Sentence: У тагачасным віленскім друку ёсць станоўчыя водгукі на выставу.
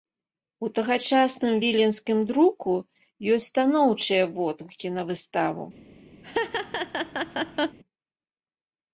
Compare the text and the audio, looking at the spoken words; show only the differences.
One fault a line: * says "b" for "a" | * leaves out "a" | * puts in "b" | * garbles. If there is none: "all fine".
all fine